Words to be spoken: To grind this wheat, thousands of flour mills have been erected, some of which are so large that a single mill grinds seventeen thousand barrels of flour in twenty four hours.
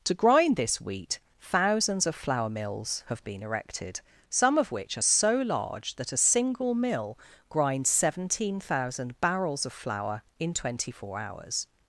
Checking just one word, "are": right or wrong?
right